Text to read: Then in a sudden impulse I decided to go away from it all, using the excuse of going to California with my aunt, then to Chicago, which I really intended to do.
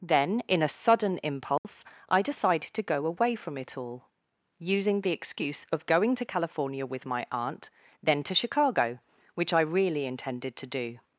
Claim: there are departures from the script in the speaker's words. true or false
false